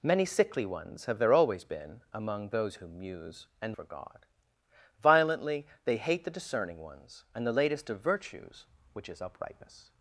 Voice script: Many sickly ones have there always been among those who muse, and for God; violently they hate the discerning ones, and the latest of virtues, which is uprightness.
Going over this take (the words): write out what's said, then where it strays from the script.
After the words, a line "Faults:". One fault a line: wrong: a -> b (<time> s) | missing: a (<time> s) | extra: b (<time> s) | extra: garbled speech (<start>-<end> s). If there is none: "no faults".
Many sickly ones have there always been among those who muse, and for God; violently they hate the discerning ones, and the latest of virtues, which is uprightness.
Faults:
no faults